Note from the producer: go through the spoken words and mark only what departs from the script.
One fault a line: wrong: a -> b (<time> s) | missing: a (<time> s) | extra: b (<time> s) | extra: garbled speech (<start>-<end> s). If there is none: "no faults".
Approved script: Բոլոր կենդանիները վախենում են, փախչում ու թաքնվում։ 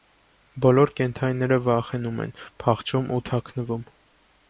no faults